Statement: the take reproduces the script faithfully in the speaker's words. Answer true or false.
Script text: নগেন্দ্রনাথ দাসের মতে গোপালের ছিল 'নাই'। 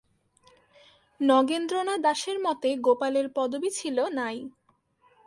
false